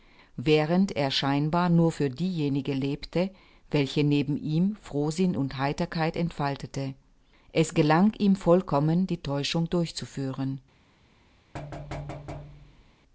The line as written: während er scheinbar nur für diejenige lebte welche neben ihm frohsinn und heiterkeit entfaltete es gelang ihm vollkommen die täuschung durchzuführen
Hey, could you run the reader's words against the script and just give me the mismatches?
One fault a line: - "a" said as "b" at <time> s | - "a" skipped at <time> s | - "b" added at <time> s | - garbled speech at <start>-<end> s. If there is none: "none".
none